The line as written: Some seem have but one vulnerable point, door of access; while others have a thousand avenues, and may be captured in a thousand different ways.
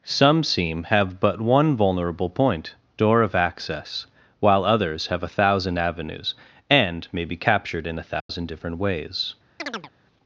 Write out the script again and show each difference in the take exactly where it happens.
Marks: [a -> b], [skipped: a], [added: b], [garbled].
Some seem have but one vulnerable point, door of access; while others have a thousand avenues, and may be captured in a thousand different ways.